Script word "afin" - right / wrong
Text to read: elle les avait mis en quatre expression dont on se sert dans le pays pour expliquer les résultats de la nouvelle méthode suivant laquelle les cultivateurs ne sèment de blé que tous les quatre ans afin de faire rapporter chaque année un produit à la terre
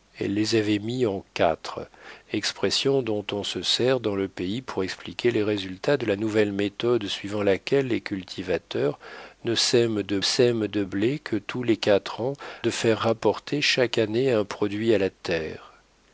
wrong